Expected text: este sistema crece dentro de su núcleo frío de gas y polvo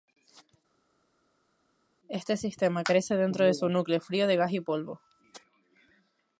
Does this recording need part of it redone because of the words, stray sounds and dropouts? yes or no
no